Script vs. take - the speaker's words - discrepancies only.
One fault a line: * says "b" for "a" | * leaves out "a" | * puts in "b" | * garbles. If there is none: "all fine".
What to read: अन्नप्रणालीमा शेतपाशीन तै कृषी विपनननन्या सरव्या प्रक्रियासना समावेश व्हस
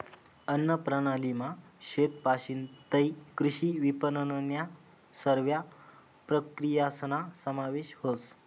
all fine